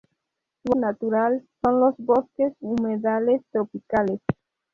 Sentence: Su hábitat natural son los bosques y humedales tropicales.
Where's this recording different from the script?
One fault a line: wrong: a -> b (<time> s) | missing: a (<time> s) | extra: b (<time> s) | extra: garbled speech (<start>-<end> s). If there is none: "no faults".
missing: hábitat (0.8 s)
missing: y (2.5 s)